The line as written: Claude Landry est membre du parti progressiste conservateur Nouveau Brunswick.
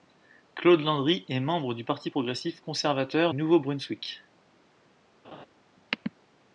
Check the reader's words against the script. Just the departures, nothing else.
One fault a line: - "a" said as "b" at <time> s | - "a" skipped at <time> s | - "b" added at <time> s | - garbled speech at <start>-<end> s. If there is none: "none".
none